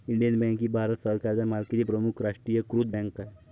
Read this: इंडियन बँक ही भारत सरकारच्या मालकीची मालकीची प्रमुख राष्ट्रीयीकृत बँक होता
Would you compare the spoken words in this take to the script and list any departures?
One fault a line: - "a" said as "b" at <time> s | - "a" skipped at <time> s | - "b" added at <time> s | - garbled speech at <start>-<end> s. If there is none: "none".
- "मालकीची" skipped at 1.8 s
- "होता" said as "आहे" at 3.2 s